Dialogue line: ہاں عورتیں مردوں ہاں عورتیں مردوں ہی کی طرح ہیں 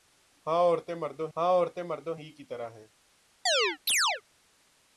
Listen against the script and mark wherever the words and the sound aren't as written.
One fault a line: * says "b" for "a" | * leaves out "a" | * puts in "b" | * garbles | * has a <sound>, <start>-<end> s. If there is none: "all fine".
* has a chirp, 3.5-4.2 s